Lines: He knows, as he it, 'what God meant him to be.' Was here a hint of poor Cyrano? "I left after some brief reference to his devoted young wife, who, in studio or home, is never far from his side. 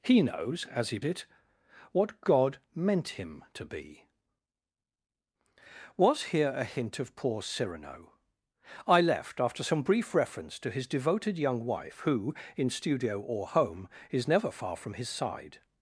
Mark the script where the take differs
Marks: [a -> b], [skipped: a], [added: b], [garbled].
He knows, as he it, 'what God meant him to be.' Was here a hint of poor Cyrano? "I left after some brief reference to his devoted young wife, who, in studio or home, is never far from his side.